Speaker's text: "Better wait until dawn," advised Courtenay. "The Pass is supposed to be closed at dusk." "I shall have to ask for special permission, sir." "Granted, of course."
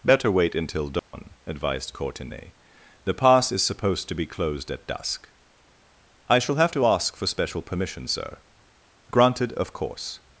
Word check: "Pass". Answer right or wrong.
right